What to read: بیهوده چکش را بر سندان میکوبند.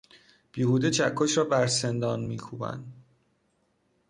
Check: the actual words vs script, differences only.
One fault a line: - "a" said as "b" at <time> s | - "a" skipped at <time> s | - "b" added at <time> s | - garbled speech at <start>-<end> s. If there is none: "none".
none